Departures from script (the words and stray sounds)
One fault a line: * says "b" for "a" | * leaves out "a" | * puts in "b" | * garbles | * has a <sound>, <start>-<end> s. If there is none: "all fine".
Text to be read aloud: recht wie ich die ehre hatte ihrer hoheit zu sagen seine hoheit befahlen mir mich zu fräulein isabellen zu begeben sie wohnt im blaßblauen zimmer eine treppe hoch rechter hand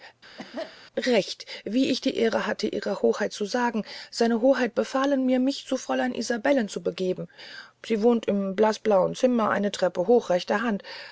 * has a cough, 0.4-0.8 s